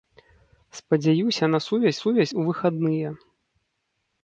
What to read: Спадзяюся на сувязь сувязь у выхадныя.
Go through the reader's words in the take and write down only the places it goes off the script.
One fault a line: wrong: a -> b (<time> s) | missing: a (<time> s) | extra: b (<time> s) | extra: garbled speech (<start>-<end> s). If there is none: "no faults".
no faults